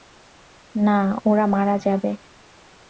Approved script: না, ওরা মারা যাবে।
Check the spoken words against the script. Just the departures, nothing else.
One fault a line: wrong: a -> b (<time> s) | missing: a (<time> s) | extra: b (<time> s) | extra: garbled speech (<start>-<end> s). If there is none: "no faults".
no faults